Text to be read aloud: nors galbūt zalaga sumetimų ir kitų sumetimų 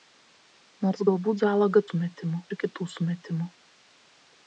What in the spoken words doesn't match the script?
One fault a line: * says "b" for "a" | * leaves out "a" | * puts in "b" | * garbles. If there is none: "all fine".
all fine